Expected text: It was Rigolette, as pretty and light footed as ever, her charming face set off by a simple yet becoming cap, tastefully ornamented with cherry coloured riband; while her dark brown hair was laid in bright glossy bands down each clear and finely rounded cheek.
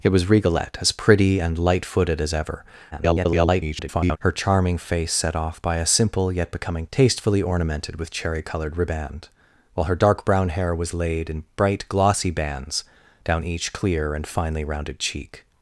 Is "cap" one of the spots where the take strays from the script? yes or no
yes